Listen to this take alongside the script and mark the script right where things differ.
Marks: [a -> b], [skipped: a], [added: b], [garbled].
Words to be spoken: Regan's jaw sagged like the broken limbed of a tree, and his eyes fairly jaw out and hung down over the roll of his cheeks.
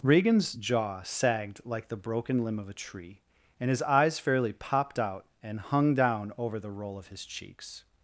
Regan's jaw sagged like the broken [limbed -> limb] of a tree, and his eyes fairly [jaw -> popped] out and hung down over the roll of his cheeks.